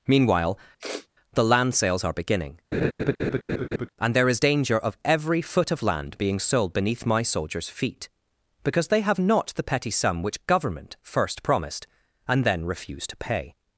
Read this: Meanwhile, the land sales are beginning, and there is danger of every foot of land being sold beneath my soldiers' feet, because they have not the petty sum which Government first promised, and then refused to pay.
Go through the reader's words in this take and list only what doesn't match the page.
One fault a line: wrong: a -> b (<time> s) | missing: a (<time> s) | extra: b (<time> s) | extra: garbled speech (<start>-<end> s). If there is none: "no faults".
no faults